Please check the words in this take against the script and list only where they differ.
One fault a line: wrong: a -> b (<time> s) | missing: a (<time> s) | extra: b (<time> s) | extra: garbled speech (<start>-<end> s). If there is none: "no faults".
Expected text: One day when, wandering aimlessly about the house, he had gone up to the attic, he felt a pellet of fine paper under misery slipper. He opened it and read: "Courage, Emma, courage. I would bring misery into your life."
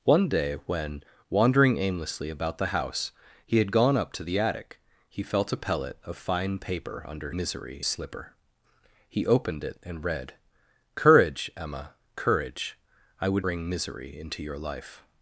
no faults